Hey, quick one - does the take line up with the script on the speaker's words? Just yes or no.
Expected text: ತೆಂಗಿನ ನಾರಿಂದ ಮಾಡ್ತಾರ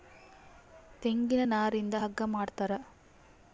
no